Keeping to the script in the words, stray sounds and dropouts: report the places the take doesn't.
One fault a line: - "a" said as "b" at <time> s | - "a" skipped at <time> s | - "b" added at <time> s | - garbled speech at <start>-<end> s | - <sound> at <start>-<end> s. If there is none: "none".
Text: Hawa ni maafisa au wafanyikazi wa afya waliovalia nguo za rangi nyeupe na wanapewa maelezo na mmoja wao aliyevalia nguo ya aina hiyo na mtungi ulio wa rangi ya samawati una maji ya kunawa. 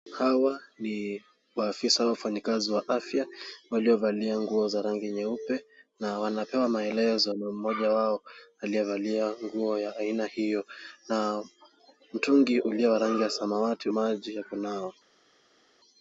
- "una" skipped at 13.9 s